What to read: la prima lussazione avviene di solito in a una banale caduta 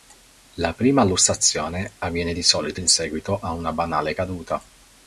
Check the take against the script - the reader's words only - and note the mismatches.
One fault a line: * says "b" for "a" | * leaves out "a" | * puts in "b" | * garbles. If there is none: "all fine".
* puts in "seguito"